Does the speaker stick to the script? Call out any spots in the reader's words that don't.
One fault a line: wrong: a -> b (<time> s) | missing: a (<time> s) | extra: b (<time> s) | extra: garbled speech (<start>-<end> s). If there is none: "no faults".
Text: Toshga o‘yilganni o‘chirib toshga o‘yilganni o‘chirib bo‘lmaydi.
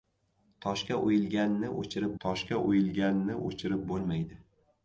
no faults